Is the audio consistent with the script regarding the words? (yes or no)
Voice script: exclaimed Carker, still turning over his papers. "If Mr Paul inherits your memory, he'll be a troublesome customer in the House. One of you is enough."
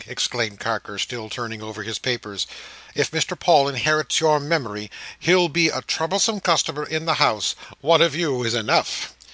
yes